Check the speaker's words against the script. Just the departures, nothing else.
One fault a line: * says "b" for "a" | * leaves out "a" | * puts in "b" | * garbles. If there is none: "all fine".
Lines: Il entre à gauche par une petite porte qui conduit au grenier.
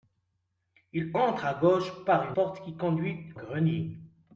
* leaves out "une petite"
* leaves out "au"